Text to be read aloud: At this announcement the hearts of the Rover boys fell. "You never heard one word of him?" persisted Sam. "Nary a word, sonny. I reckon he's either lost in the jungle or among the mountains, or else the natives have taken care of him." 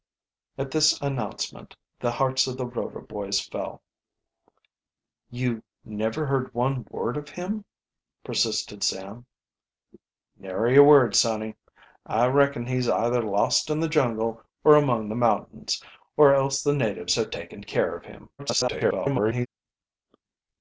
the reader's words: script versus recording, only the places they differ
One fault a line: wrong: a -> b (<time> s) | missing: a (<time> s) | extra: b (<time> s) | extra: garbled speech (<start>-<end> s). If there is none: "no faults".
extra: garbled speech (18.4-19.5 s)